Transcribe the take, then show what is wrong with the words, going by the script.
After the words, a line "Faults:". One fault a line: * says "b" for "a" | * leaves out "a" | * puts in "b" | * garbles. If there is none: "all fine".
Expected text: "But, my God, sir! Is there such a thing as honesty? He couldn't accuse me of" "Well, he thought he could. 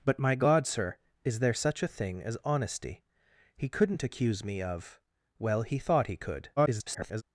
"But, my God, sir! Is there such a thing as honesty? He couldn't accuse me of" "Well, he thought he could. [garbled]
Faults:
* garbles